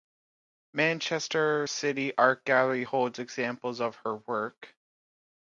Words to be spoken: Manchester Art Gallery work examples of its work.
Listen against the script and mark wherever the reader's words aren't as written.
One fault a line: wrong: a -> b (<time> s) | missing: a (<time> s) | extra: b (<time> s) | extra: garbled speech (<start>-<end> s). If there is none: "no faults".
extra: City (1.6 s)
wrong: work -> holds (2.8 s)
wrong: its -> her (4.0 s)